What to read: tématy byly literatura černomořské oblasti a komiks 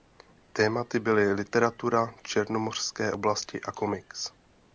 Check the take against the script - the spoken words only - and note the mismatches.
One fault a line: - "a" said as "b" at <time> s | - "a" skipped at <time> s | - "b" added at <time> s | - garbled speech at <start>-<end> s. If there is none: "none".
none